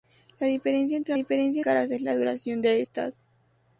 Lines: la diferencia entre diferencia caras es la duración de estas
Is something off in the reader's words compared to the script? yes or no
no